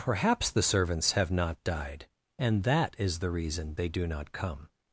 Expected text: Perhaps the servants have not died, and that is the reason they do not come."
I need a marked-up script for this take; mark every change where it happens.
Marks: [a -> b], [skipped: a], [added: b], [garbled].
Perhaps the servants have not died, and that is the reason they do not come."